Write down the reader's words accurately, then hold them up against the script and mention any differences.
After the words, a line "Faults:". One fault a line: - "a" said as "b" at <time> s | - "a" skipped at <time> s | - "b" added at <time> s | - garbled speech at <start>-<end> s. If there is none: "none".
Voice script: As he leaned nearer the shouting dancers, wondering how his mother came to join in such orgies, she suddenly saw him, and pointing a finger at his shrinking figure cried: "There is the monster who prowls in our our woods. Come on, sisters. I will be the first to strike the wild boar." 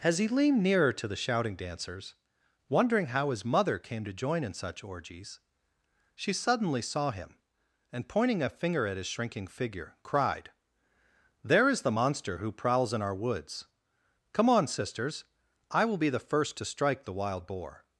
As he leaned nearer to the shouting dancers, wondering how his mother came to join in such orgies, she suddenly saw him, and pointing a finger at his shrinking figure cried: "There is the monster who prowls in our woods. Come on, sisters. I will be the first to strike the wild boar."
Faults:
- "to" added at 0.9 s
- "our" skipped at 13.2 s